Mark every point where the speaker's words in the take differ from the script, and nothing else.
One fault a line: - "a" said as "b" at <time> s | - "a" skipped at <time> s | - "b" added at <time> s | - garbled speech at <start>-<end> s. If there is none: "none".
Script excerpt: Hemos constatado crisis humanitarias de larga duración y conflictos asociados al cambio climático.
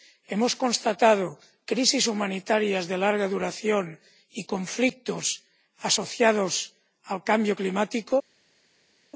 none